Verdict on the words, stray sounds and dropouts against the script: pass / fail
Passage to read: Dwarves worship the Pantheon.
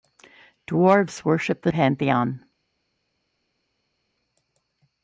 pass